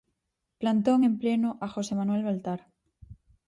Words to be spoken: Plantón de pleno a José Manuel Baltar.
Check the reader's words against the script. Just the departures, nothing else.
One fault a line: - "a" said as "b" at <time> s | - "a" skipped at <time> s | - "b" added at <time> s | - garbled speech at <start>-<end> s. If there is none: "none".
- "de" said as "en" at 1.0 s